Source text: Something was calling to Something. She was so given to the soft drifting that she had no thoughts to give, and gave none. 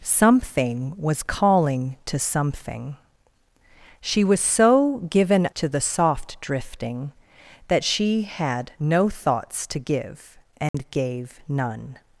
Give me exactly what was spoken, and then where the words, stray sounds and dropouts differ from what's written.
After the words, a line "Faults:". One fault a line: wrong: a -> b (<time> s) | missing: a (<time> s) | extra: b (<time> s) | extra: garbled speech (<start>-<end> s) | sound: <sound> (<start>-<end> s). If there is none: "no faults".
Something was calling to Something. She was so given to the soft drifting that she had no thoughts to give, and gave none.
Faults:
sound: dropout (10.7-10.7 s)